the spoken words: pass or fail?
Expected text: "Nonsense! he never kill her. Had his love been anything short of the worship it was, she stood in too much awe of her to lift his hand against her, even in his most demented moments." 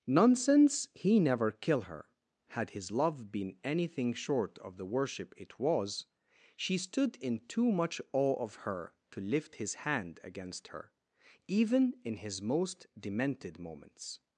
pass